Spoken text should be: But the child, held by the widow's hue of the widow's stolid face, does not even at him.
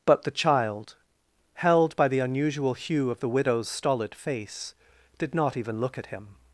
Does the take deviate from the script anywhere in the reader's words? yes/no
yes